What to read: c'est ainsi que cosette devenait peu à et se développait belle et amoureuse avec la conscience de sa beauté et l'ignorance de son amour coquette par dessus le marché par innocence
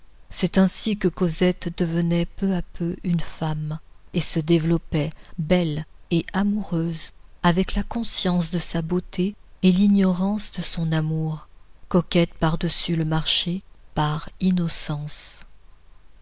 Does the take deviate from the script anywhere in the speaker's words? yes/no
yes